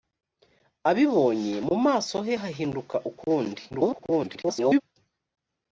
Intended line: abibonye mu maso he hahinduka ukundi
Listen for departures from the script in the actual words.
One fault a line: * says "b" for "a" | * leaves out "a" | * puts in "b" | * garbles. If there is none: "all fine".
* garbles